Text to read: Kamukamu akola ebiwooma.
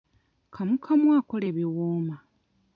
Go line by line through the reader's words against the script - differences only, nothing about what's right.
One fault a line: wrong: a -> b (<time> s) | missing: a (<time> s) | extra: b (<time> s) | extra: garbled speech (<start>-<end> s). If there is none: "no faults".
no faults